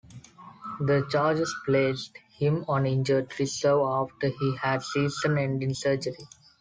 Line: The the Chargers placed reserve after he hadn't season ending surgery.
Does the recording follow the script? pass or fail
fail